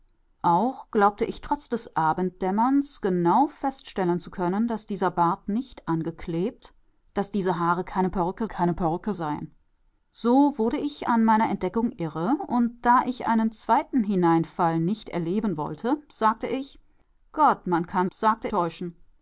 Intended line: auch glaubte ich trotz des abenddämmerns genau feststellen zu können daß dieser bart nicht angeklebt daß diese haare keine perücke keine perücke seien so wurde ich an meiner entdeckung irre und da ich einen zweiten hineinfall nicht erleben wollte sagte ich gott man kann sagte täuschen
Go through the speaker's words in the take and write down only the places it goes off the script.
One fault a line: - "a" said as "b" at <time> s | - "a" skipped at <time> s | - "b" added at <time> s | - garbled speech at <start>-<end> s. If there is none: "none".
none